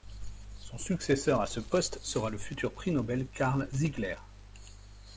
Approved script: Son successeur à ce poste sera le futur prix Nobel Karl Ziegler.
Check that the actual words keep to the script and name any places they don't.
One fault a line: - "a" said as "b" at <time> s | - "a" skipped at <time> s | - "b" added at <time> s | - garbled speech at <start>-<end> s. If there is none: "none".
none